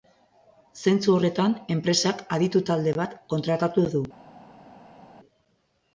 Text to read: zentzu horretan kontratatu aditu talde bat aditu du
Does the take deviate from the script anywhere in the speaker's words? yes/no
yes